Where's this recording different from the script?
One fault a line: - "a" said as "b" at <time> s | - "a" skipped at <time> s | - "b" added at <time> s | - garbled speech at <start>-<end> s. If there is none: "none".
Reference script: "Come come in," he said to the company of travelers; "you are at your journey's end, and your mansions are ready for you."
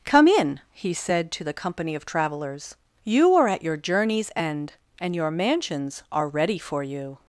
- "come" skipped at 0.3 s